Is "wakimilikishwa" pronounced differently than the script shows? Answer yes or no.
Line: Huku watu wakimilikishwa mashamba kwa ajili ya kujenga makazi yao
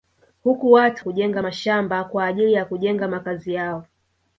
yes